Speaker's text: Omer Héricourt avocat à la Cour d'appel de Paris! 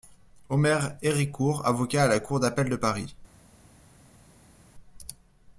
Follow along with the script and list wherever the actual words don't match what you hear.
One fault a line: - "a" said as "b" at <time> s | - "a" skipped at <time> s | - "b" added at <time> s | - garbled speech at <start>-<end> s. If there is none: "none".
none